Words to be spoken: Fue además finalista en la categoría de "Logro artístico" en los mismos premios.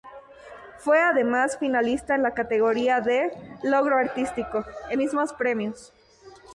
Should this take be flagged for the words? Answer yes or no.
yes